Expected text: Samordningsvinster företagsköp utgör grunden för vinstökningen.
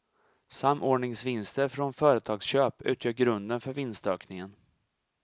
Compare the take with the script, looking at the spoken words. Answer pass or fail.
fail